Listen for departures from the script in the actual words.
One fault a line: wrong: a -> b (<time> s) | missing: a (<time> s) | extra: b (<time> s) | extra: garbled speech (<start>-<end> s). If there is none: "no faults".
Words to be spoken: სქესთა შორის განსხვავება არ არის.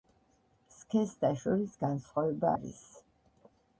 missing: არ (2.5 s)